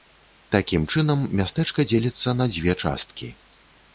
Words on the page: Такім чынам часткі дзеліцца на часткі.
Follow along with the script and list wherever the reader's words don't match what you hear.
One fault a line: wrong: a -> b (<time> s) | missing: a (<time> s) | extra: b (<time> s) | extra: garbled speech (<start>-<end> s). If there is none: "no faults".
wrong: часткі -> мястэчка (1.4 s)
extra: дзве (2.5 s)